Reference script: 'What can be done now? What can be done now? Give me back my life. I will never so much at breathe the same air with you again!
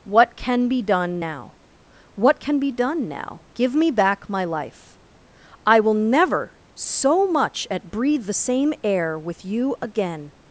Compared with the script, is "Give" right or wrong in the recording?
right